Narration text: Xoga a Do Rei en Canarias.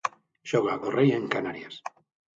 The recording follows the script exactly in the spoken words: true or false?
true